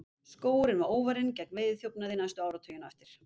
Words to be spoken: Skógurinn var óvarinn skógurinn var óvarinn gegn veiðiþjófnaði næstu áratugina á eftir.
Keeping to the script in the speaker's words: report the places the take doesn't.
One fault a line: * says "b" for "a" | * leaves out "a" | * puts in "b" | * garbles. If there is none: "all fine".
* leaves out "skógurinn var óvarinn"